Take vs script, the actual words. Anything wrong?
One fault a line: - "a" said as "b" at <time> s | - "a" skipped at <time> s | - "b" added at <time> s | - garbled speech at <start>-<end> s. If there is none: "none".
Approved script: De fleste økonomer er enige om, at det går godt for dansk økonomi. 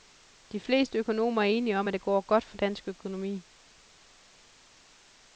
none